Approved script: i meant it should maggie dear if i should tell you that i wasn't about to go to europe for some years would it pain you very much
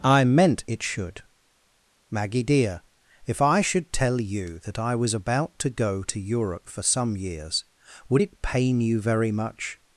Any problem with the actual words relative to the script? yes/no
yes